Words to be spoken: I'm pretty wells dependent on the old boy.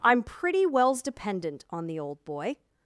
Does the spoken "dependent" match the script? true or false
true